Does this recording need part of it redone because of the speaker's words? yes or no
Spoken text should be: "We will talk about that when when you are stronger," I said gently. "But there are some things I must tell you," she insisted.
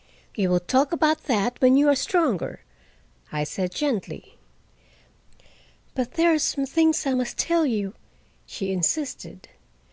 yes